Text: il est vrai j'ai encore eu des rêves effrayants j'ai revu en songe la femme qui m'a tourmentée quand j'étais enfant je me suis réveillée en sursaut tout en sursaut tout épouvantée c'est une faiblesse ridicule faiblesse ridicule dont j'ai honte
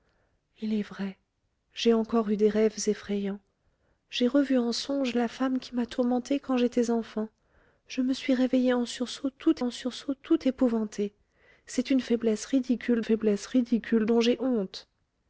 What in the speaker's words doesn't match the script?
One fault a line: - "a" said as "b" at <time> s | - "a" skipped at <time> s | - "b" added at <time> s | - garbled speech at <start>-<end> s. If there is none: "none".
none